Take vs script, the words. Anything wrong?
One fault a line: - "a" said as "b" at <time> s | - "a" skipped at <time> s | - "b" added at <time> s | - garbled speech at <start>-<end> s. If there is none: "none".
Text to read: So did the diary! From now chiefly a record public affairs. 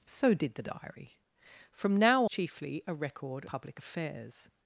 none